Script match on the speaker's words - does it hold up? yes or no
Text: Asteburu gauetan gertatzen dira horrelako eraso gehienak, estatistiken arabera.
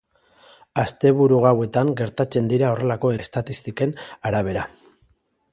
no